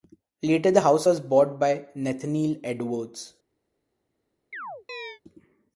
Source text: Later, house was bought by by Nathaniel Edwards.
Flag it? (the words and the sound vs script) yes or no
yes